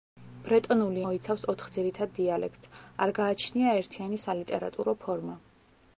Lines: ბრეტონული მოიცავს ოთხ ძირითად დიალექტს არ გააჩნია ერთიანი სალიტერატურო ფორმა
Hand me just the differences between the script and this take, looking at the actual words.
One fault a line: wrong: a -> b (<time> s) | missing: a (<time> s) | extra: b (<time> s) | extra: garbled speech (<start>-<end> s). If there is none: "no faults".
no faults